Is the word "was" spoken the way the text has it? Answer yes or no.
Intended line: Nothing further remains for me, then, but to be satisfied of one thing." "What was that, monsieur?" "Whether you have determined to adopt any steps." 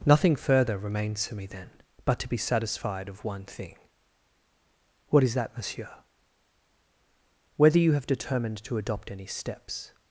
no